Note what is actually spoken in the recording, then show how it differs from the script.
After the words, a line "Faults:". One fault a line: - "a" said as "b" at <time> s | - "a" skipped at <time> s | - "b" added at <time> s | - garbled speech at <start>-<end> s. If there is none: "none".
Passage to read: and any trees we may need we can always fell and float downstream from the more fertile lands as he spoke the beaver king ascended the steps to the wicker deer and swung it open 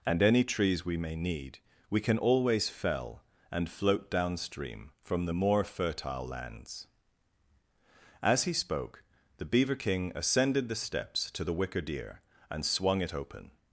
and any trees we may need we can always fell and float downstream from the more fertile lands as he spoke the beaver king ascended the steps to the wicker deer and swung it open
Faults:
none